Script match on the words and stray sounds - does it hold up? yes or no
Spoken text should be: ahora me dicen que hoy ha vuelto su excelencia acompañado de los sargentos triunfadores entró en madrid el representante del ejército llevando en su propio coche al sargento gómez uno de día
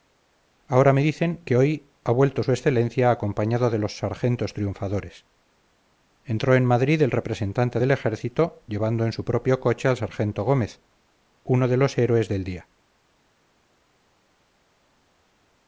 no